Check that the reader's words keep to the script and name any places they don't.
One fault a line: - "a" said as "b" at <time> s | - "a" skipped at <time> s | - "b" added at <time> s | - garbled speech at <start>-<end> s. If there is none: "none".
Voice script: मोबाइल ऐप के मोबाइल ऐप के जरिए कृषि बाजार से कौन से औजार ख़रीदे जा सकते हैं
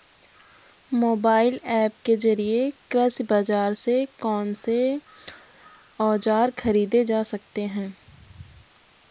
- "मोबाइल ऐप के" skipped at 2.1 s